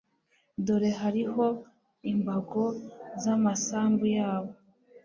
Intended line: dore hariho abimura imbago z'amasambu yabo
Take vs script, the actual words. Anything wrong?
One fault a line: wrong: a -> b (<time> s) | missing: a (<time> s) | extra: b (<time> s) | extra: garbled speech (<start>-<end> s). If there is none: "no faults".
missing: abimura (1.4 s)